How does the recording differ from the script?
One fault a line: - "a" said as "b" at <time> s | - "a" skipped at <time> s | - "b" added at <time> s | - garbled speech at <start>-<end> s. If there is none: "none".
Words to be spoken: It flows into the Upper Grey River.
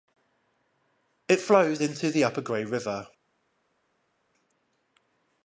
none